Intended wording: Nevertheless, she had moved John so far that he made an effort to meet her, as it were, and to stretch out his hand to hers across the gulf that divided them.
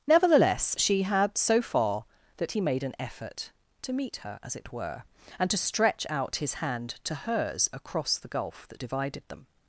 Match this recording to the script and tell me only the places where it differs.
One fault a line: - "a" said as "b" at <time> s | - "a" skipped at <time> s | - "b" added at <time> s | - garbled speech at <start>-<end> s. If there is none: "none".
- "moved John" skipped at 1.4 s